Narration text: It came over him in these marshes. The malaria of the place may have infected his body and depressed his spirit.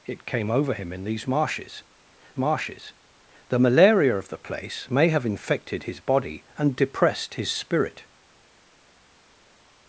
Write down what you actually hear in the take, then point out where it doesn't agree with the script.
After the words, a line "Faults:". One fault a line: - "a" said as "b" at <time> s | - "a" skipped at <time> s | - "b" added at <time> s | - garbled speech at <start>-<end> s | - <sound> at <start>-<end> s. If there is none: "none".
It came over him in these marshes marshes. The malaria of the place may have infected his body and depressed his spirit.
Faults:
- "marshes" added at 2.4 s